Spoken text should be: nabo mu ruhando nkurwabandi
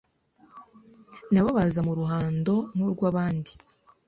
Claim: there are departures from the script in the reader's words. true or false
true